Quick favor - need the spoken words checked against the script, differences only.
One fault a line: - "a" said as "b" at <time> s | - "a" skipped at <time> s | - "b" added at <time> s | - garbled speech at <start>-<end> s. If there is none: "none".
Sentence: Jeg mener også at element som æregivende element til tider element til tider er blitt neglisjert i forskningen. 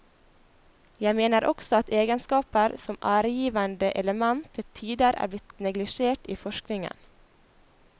- "element" said as "egenskaper" at 2.0 s
- "element til tider" skipped at 5.1 s